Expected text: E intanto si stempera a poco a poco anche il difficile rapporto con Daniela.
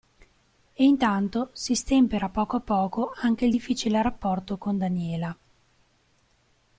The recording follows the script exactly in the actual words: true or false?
true